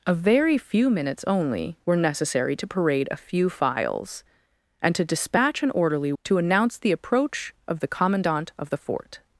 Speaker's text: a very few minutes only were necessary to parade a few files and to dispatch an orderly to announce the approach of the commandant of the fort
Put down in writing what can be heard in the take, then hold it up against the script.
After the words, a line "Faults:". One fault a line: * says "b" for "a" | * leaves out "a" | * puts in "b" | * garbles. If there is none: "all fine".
a very few minutes only were necessary to parade a few files and to dispatch an orderly to announce the approach of the commandant of the fort
Faults:
all fine